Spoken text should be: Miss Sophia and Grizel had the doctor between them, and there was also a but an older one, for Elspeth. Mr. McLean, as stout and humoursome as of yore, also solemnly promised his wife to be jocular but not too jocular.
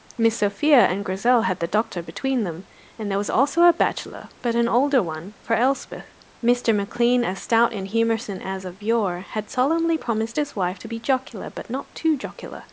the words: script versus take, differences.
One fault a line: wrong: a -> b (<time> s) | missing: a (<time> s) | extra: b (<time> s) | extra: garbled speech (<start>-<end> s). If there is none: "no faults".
extra: bachelor (3.7 s)
wrong: also -> had (9.3 s)